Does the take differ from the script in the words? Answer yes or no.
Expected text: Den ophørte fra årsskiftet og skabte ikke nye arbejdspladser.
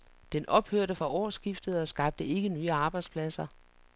no